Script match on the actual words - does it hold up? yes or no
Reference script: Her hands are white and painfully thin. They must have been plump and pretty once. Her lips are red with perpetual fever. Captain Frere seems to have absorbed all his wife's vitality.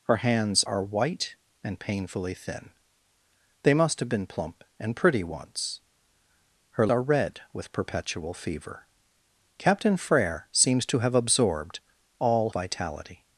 no